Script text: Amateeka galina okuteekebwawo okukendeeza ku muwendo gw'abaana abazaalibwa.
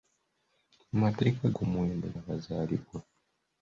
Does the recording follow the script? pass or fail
fail